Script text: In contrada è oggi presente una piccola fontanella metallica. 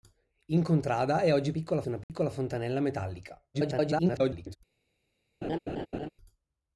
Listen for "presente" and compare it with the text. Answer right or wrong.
wrong